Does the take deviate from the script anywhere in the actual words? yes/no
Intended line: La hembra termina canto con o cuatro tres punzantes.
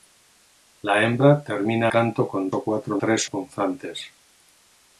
no